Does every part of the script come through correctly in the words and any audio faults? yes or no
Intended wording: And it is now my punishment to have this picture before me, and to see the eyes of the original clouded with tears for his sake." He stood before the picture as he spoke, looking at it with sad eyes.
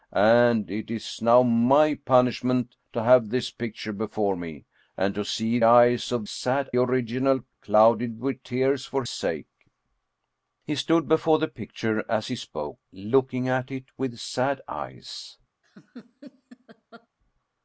no